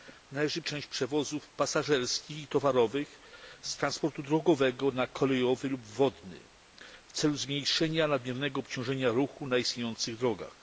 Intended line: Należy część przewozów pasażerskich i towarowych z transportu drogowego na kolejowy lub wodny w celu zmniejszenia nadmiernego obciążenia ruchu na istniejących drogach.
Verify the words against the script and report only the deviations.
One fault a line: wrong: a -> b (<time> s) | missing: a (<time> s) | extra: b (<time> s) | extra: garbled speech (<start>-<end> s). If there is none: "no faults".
no faults